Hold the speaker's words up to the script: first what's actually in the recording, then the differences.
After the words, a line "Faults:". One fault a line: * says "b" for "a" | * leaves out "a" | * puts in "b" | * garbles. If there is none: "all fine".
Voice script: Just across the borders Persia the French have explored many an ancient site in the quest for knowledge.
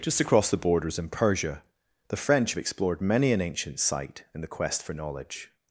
Just across the borders in Persia the French have explored many an ancient site in the quest for knowledge.
Faults:
* puts in "in"